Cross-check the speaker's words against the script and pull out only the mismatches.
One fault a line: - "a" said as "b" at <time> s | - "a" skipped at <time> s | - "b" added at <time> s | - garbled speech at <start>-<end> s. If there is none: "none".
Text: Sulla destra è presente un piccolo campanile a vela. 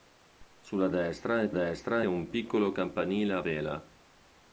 - "presente" said as "destra" at 1.5 s